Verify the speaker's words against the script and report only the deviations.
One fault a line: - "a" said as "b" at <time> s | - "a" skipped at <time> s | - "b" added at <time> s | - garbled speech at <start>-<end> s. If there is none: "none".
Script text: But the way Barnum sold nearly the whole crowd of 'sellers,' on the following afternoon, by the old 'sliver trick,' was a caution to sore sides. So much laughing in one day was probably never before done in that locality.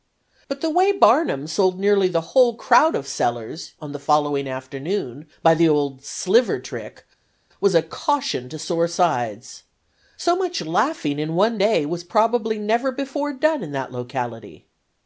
none